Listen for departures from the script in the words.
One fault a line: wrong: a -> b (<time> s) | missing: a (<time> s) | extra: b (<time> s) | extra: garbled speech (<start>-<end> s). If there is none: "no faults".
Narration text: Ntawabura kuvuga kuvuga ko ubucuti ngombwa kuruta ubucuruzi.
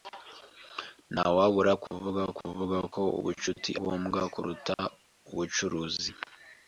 no faults